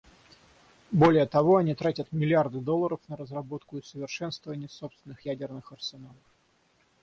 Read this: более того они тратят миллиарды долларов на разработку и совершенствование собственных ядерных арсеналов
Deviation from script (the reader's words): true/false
false